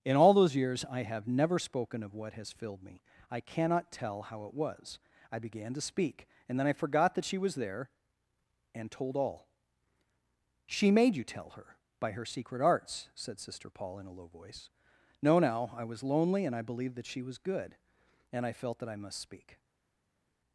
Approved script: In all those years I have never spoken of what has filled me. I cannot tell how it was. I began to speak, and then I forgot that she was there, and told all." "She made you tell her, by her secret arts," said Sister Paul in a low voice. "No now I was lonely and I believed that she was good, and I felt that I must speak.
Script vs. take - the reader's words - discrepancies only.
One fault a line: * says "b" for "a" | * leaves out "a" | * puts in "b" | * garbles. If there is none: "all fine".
all fine